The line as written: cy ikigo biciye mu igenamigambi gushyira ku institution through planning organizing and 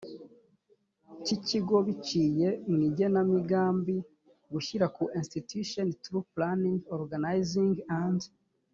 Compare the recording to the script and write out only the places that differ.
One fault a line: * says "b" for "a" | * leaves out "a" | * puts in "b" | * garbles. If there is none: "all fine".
all fine